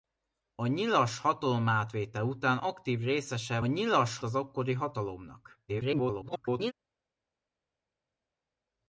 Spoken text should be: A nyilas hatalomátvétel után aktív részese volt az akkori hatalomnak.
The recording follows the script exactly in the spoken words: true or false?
false